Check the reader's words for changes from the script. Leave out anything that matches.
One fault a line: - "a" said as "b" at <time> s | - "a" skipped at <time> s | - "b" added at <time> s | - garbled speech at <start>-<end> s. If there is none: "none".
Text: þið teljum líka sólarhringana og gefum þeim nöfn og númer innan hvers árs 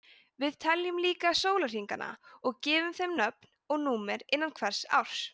- "þið" said as "við" at 0.4 s